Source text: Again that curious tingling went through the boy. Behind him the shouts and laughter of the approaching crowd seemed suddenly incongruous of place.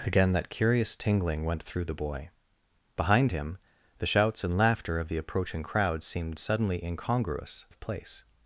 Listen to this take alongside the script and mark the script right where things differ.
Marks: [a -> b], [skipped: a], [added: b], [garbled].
Again that curious tingling went through the boy. Behind him the shouts and laughter of the approaching crowd seemed suddenly incongruous of place.